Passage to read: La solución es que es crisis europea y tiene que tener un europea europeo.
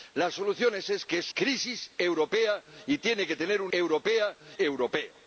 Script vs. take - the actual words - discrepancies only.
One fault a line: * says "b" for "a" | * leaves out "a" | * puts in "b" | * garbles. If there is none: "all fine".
all fine